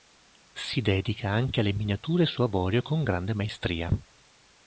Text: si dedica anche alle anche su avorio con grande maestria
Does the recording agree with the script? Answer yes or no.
no